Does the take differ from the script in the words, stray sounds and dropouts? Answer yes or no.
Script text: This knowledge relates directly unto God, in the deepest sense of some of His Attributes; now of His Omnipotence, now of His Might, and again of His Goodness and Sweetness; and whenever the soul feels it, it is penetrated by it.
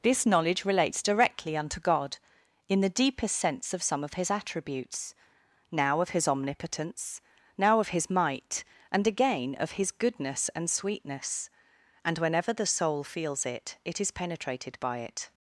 no